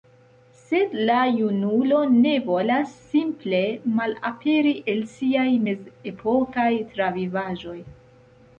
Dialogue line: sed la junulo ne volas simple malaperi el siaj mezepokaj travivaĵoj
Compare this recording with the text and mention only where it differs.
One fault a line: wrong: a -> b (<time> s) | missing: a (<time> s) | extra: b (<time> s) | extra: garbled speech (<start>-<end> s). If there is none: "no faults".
no faults